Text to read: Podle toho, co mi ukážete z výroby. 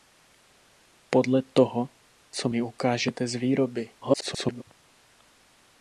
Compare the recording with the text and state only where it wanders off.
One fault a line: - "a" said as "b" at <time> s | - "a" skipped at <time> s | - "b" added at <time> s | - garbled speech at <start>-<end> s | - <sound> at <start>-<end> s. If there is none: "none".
- garbled speech at 4.0-4.6 s